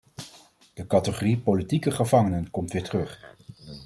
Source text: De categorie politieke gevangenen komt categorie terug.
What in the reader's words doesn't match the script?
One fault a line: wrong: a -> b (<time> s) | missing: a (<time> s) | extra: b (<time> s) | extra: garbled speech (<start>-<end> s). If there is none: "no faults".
wrong: categorie -> weer (2.7 s)